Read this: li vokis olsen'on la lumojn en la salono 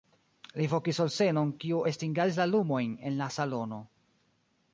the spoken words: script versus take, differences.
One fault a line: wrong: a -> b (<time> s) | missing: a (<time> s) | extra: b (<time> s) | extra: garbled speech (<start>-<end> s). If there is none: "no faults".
extra: kiu estingadis (1.6 s)